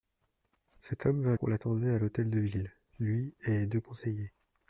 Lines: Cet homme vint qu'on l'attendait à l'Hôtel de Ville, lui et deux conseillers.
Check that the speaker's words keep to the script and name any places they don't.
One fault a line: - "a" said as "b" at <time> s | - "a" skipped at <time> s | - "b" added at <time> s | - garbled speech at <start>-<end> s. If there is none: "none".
none